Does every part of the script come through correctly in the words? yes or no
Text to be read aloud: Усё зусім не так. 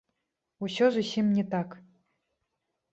yes